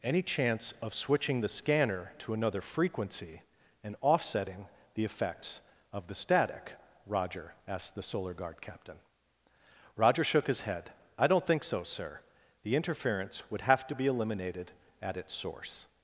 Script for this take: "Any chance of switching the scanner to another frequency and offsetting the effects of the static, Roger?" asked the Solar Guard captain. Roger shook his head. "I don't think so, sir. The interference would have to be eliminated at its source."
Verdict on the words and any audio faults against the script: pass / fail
pass